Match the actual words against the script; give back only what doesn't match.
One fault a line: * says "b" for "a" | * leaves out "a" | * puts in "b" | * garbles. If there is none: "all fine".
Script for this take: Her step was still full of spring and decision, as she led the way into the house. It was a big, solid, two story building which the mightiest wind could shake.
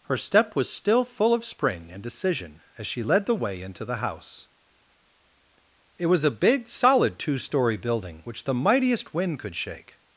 all fine